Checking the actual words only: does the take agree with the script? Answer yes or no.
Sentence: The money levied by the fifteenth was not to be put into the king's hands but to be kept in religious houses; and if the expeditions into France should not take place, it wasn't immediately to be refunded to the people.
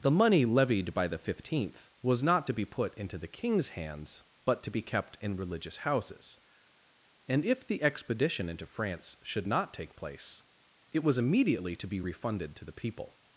no